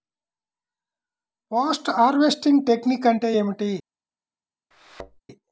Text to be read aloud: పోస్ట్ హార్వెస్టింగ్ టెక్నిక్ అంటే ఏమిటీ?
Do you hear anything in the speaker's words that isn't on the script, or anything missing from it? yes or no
no